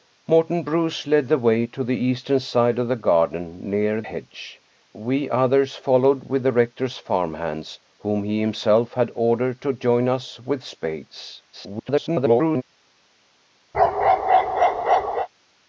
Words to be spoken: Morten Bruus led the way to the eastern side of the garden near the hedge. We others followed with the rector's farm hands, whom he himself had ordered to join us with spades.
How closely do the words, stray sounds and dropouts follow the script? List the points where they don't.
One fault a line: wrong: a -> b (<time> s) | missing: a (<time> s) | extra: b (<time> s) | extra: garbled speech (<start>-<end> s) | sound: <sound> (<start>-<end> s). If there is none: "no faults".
missing: the (4.0 s)
extra: garbled speech (11.5-12.6 s)
sound: bark (13.7-15.3 s)